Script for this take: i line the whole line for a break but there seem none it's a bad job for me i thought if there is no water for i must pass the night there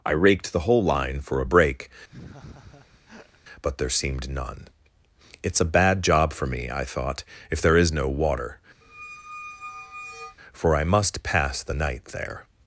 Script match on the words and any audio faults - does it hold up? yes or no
no